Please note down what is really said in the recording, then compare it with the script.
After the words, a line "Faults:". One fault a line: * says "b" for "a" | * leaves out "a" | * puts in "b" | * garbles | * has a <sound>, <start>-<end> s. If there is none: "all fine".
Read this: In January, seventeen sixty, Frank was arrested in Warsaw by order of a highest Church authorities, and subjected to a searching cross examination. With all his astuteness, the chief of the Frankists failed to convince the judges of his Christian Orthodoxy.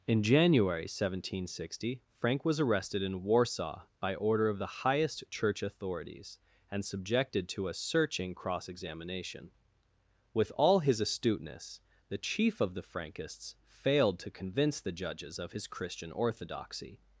In January, seventeen sixty, Frank was arrested in Warsaw by order of the highest Church authorities, and subjected to a searching cross examination. With all his astuteness, the chief of the Frankists failed to convince the judges of his Christian Orthodoxy.
Faults:
* says "the" for "a"